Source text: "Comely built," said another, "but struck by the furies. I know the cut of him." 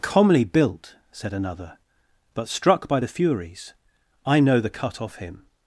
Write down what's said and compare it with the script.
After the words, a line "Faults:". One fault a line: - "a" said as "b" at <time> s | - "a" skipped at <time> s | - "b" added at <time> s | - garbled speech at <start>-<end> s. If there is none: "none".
"Comely built," said another, "but struck by the furies. I know the cut off him."
Faults:
- "of" said as "off" at 5.0 s